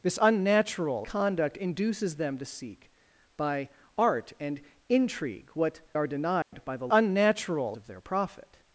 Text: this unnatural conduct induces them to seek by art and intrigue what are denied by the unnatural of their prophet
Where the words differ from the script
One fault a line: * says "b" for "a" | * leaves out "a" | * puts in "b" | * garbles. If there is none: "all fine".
all fine